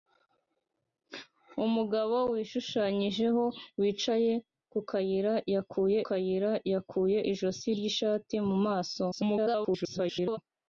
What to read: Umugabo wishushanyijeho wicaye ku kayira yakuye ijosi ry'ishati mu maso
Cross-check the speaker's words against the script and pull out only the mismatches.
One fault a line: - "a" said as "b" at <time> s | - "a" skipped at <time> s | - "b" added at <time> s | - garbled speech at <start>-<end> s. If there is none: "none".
- "kayira yakuye" added at 6.1 s
- garbled speech at 9.1-10.4 s